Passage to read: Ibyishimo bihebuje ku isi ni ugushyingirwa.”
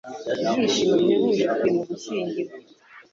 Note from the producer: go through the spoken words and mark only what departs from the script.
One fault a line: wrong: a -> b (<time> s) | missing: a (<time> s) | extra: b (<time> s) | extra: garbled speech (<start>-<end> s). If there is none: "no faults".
missing: isi (1.6 s)